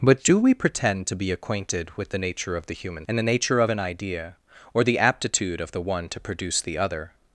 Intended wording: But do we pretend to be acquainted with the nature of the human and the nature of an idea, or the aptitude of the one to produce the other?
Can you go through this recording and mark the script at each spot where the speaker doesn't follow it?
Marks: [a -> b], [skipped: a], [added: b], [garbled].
But do we pretend to be acquainted with the nature of the human and the nature of an idea, or the aptitude of the one to produce the other?